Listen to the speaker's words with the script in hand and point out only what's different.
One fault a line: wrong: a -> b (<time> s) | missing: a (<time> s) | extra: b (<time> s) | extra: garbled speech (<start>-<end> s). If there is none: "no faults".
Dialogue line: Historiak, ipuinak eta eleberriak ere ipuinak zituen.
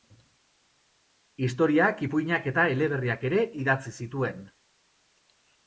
wrong: ipuinak -> idatzi (3.7 s)